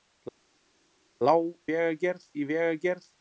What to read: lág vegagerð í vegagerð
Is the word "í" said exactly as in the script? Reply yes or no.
yes